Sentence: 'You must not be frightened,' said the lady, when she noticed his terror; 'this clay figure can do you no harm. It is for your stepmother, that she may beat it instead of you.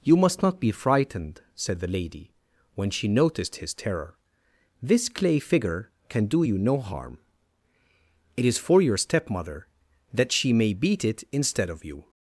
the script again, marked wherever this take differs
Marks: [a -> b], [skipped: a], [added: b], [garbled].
'You must not be frightened,' said the lady, when she noticed his terror; 'this clay figure can do you no harm. It is for your stepmother, that she may beat it instead of you.